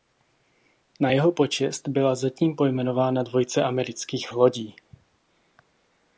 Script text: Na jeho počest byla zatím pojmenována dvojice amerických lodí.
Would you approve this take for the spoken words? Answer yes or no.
yes